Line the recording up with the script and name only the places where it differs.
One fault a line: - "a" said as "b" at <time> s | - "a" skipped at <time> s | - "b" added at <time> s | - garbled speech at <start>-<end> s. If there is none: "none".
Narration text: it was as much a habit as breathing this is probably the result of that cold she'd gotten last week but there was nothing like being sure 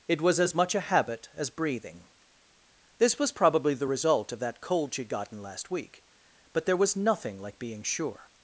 - "is" said as "was" at 3.2 s